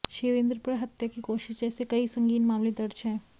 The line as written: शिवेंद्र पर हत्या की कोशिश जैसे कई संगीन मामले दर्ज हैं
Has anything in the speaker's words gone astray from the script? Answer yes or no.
no